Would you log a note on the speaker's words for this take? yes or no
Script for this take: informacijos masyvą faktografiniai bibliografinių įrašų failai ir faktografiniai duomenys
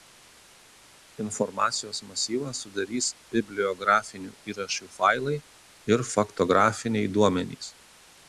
yes